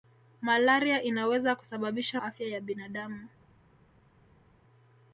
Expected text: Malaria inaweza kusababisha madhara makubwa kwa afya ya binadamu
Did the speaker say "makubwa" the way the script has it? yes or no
no